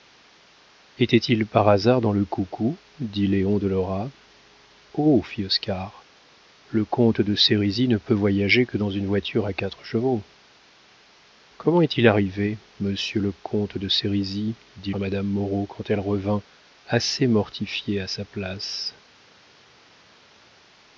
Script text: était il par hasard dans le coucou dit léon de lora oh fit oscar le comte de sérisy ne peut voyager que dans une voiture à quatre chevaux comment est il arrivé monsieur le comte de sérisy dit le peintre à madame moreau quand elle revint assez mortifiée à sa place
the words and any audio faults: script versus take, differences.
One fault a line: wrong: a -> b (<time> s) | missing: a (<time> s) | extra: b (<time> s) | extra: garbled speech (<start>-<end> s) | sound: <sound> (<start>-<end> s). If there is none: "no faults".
missing: le peintre (14.9 s)